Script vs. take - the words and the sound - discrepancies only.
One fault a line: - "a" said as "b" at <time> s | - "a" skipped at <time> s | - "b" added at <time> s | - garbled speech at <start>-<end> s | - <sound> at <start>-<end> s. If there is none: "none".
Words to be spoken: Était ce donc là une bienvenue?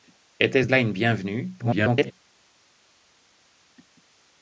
- "donc" skipped at 0.7 s
- garbled speech at 1.6-2.1 s